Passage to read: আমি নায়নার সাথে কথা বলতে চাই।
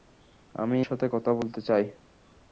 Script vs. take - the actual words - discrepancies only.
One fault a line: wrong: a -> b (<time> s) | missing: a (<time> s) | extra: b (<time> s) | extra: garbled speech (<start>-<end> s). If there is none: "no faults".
missing: নায়নার (0.8 s)